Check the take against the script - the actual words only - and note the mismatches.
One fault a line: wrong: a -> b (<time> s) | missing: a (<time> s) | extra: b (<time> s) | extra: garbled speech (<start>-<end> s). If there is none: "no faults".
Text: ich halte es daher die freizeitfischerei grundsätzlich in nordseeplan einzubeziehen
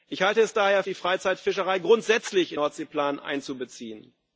no faults